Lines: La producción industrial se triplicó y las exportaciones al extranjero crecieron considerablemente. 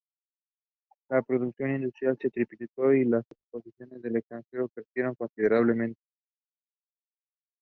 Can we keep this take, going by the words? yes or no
yes